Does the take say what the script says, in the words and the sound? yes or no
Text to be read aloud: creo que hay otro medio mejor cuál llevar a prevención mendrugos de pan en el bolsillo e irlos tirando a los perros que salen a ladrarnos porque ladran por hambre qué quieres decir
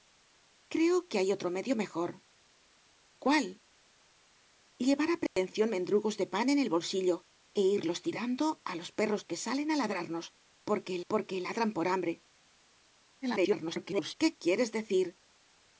no